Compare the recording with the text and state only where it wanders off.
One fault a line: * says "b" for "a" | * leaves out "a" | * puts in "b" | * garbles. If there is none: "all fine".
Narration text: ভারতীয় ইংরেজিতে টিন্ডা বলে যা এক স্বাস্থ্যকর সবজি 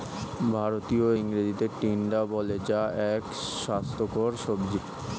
all fine